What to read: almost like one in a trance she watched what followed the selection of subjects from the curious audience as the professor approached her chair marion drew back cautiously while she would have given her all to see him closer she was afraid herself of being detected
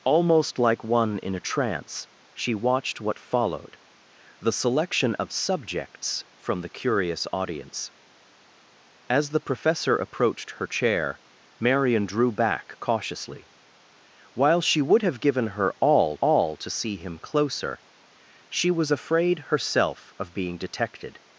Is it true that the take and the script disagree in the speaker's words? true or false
true